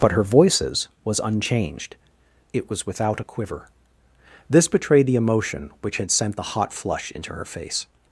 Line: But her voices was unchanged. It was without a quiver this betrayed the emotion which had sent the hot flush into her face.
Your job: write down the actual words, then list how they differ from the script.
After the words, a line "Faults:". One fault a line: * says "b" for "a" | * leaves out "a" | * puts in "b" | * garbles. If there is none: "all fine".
But her voices was unchanged. It was without a quiver this betrayed the emotion which had sent the hot flush into her face.
Faults:
all fine